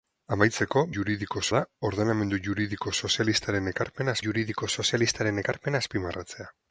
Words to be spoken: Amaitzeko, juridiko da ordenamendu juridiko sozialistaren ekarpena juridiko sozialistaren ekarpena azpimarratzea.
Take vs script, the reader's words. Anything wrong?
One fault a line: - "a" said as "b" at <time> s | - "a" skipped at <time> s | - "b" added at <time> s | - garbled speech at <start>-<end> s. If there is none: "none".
none